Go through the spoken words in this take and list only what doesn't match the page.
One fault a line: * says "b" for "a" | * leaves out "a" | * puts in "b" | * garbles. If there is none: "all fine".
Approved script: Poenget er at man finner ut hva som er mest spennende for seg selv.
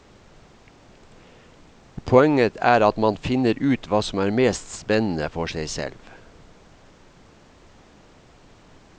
all fine